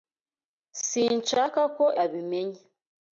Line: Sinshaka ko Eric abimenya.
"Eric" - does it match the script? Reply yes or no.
no